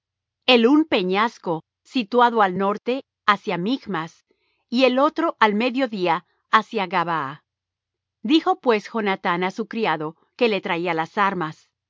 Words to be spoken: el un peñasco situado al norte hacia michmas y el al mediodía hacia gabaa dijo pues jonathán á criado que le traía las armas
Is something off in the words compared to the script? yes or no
yes